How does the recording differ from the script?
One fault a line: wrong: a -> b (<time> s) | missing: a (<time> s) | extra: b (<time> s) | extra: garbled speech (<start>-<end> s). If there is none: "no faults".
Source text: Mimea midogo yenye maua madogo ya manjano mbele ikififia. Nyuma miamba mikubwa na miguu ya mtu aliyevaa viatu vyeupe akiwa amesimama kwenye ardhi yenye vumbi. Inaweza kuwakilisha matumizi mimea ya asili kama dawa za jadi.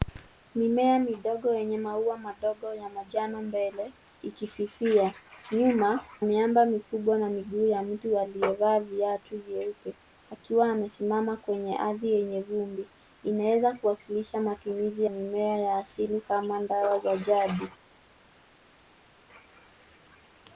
no faults